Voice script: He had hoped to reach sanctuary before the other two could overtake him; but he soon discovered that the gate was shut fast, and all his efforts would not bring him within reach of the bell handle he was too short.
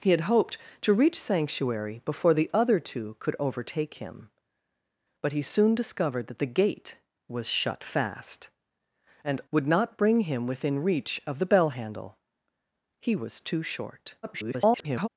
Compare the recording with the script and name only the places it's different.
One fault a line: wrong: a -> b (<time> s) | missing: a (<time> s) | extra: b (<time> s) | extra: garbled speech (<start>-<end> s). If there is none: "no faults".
missing: all his efforts (9.4 s)
extra: garbled speech (14.2-15.1 s)